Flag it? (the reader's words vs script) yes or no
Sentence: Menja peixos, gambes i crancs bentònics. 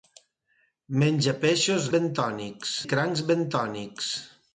yes